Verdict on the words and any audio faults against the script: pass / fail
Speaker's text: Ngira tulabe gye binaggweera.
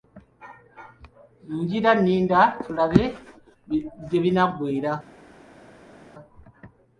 fail